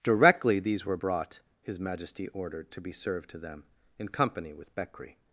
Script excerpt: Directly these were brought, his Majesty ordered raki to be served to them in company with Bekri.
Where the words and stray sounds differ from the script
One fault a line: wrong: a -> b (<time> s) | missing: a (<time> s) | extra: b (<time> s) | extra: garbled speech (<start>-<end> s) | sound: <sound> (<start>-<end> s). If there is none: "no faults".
missing: raki (2.7 s)